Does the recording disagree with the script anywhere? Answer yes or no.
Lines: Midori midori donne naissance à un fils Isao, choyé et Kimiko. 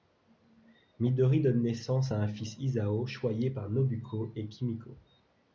yes